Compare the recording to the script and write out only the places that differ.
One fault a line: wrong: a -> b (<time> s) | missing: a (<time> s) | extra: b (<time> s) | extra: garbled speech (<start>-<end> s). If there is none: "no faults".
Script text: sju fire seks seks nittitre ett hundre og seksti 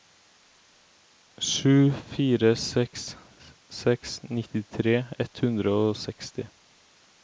no faults